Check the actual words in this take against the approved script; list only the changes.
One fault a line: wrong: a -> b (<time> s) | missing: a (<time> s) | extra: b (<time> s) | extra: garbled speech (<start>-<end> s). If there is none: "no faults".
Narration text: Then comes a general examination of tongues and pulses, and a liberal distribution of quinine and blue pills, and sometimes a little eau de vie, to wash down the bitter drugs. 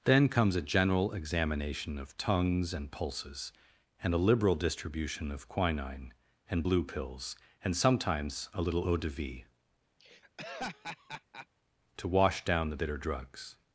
no faults